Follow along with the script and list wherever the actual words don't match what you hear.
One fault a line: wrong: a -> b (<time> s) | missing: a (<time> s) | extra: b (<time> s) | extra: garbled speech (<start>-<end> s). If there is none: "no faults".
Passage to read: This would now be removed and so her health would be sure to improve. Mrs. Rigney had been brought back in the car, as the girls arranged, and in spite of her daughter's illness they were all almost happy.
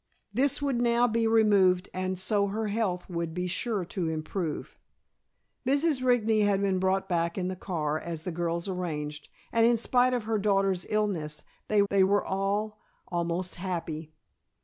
extra: they (11.9 s)